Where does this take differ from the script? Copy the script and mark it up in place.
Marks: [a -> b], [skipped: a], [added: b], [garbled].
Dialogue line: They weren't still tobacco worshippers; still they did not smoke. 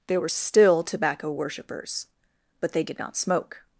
They [weren't -> were] still tobacco worshippers; [still -> but] they did not smoke.